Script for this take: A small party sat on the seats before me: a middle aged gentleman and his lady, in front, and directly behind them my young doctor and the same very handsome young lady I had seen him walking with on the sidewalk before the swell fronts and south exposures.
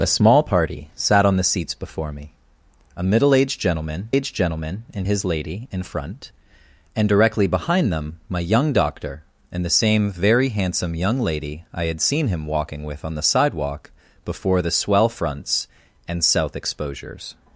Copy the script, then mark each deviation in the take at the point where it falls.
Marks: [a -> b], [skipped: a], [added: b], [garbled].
A small party sat on the seats before me: a middle aged gentleman [added: aged gentleman] and his lady, in front, and directly behind them my young doctor and the same very handsome young lady I had seen him walking with on the sidewalk before the swell fronts and south exposures.